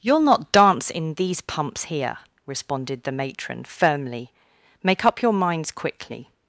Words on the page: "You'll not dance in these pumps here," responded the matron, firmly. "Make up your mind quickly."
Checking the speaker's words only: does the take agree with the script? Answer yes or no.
no